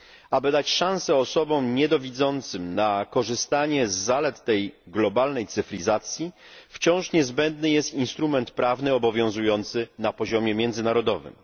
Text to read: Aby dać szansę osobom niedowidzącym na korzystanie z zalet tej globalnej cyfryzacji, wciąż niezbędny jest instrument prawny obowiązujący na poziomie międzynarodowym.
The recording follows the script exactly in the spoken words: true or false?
true